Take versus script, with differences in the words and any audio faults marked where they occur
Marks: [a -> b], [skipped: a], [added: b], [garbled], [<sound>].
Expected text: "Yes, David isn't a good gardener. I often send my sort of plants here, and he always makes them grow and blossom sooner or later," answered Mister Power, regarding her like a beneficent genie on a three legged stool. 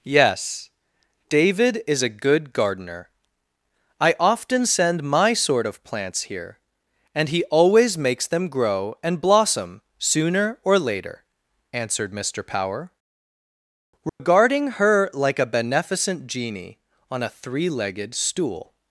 "Yes, David [isn't -> is] a good gardener. I often send my sort of plants here, and he always makes them grow and blossom sooner or later," answered Mister Power, regarding [dropout] her like a beneficent genie on a three legged stool.